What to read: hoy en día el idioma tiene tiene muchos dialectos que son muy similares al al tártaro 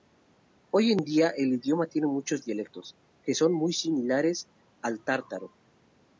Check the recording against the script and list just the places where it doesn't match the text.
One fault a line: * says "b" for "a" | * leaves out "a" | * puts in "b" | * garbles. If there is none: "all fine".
* leaves out "tiene"
* leaves out "al"